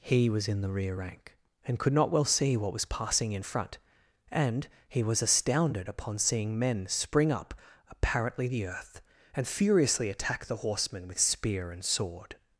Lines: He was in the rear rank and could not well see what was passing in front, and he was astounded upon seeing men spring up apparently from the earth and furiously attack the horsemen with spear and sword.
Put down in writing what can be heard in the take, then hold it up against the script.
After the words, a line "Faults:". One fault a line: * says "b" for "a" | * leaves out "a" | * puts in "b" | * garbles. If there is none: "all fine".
He was in the rear rank and could not well see what was passing in front, and he was astounded upon seeing men spring up apparently the earth and furiously attack the horsemen with spear and sword.
Faults:
* leaves out "from"